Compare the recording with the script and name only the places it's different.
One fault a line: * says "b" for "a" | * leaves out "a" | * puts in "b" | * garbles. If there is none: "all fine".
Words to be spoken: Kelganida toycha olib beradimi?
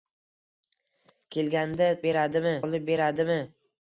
* says "beradimi" for "toycha"